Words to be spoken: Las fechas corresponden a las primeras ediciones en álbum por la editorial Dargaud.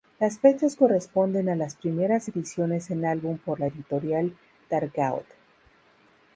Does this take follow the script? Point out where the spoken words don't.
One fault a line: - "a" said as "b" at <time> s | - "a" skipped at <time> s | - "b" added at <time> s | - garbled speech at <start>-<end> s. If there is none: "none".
none